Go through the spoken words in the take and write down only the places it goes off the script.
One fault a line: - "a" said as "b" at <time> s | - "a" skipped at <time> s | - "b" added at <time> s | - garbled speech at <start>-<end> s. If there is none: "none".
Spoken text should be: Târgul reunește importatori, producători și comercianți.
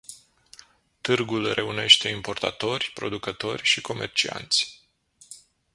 none